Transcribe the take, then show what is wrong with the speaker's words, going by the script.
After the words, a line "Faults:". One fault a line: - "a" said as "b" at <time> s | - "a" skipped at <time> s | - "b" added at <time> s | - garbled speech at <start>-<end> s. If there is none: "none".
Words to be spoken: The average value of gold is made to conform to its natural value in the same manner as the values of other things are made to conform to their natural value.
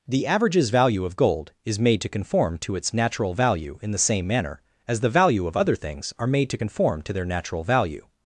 The averages value of gold is made to conform to its natural value in the same manner as the value of other things are made to conform to their natural value.
Faults:
- "average" said as "averages" at 0.3 s
- "values" said as "value" at 5.1 s